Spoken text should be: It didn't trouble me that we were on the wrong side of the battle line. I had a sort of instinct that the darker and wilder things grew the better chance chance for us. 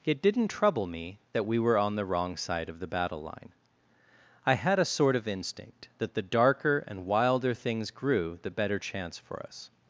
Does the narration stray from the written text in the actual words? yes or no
yes